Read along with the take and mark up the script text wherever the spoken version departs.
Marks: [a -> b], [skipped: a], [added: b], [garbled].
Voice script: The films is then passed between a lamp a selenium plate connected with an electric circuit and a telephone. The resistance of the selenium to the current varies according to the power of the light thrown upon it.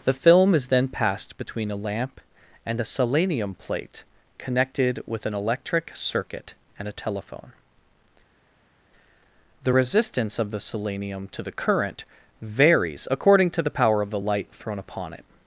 The [films -> film] is then passed between a lamp [added: and] a selenium plate connected with an electric circuit and a telephone. The resistance of the selenium to the current varies according to the power of the light thrown upon it.